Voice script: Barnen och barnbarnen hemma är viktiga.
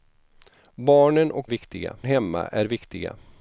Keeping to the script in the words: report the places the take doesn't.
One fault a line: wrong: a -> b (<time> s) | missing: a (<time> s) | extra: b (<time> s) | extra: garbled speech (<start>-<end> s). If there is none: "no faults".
wrong: barnbarnen -> viktiga (1.4 s)